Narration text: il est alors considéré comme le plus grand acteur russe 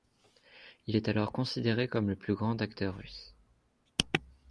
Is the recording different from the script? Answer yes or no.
no